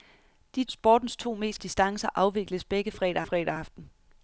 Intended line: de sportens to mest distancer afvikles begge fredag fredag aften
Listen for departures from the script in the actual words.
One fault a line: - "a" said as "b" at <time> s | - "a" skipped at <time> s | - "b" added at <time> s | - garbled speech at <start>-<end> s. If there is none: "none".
none